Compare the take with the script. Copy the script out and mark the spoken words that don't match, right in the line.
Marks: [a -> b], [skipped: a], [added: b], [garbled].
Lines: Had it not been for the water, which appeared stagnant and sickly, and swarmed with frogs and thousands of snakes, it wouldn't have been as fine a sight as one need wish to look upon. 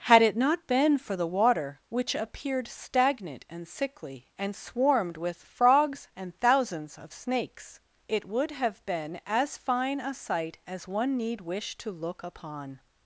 Had it not been for the water, which appeared stagnant and sickly, and swarmed with frogs and thousands of snakes, it [wouldn't -> would] have been as fine a sight as one need wish to look upon.